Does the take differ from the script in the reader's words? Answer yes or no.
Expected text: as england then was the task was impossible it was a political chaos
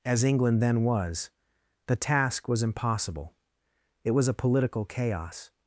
no